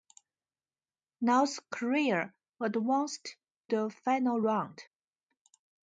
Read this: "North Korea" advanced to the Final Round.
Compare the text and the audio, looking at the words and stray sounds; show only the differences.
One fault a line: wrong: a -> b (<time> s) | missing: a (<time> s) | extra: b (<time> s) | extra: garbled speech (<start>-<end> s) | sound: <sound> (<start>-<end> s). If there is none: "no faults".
missing: to (3.4 s)